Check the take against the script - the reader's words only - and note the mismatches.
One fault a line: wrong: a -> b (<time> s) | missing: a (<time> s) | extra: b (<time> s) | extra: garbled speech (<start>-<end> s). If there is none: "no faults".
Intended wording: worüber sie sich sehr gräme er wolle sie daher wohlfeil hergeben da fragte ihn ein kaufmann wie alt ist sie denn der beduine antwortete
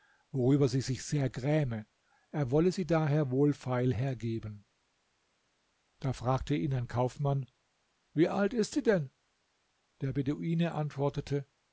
no faults